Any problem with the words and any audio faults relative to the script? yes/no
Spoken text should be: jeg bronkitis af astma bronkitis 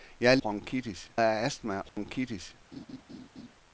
yes